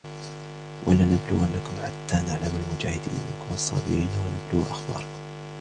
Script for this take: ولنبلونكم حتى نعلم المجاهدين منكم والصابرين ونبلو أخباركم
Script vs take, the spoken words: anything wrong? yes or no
no